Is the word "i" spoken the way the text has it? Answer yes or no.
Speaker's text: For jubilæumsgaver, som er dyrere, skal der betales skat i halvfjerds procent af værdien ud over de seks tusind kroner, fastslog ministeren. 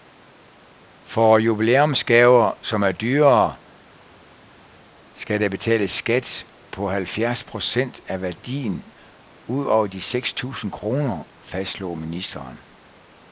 no